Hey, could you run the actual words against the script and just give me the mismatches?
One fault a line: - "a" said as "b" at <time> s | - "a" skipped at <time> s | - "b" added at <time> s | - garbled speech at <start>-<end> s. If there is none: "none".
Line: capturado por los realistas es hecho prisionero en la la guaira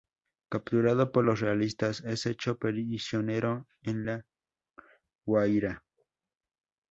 - "la" skipped at 4.2 s